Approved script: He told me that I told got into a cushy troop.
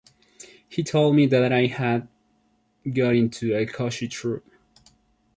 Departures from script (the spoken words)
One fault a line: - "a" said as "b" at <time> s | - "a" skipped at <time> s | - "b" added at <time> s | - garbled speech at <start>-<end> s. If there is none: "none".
- "told" said as "had" at 1.7 s